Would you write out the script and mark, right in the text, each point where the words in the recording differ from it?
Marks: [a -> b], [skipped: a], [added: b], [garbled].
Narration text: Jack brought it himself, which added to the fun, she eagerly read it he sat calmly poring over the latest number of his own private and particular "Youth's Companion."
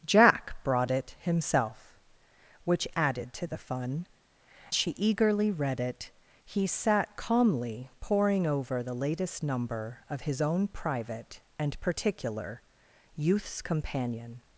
Jack brought it himself, which added to the fun, she eagerly read it he sat calmly poring over the latest number of his own private and particular "Youth's Companion."